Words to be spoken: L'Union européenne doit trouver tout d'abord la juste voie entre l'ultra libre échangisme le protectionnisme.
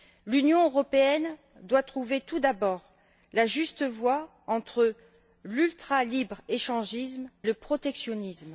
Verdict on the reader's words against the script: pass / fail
pass